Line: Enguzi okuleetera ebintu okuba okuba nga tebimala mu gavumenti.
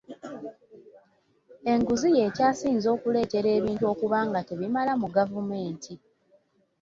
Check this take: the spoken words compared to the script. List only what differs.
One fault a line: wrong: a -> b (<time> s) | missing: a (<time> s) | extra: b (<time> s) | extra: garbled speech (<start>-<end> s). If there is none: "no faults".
extra: y'ekyasinze (2.2 s)
missing: okuba (4.2 s)